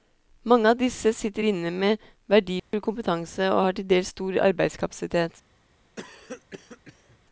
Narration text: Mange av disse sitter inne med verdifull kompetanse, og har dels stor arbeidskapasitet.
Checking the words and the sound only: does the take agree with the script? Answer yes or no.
no